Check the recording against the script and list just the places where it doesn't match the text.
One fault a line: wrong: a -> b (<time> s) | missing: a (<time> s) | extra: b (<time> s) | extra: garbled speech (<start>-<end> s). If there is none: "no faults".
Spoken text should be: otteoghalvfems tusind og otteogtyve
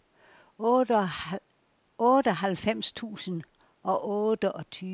no faults